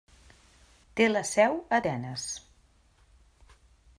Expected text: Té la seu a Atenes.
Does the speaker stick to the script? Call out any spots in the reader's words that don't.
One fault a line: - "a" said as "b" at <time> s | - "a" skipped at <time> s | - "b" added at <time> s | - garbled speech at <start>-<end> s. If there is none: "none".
none